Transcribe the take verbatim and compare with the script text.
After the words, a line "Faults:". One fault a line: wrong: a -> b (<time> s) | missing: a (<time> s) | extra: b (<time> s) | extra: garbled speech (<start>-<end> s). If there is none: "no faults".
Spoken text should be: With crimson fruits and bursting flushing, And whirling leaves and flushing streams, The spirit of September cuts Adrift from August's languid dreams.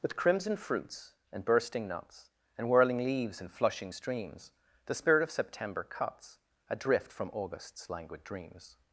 With crimson fruits and bursting nuts, And whirling leaves and flushing streams, The spirit of September cuts Adrift from August's languid dreams.
Faults:
wrong: flushing -> nuts (1.9 s)